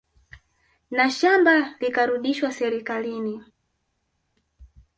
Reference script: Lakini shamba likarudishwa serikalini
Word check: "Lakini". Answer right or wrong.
wrong